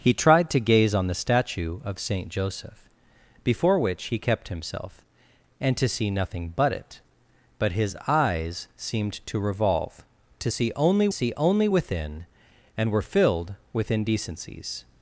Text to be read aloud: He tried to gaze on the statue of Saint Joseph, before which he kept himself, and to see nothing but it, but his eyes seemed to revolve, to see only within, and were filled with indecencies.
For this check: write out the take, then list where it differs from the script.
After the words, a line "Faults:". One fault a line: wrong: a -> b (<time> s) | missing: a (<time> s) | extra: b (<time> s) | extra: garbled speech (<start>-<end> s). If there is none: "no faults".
He tried to gaze on the statue of Saint Joseph, before which he kept himself, and to see nothing but it, but his eyes seemed to revolve, to see only see only within, and were filled with indecencies.
Faults:
extra: see only (11.1 s)